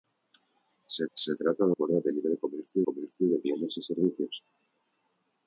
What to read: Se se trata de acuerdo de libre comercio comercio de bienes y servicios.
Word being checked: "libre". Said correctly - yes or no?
yes